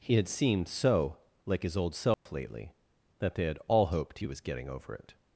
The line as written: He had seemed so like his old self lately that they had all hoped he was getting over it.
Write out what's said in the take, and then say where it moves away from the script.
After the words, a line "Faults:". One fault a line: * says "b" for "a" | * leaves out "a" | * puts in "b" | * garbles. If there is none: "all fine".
He had seemed so like his old self lately that they had all hoped he was getting over it.
Faults:
all fine